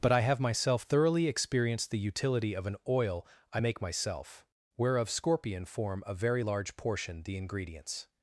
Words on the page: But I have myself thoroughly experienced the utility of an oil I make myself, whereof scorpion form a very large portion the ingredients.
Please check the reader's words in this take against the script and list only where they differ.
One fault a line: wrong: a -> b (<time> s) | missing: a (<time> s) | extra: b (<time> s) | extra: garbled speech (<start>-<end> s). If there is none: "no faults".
no faults